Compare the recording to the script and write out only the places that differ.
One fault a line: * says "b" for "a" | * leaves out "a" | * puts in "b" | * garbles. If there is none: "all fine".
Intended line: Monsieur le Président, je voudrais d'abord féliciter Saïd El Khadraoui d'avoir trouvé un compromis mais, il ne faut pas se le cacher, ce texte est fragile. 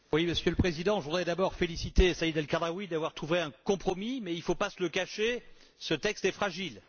all fine